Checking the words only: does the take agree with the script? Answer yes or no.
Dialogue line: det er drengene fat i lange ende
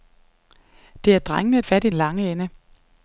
yes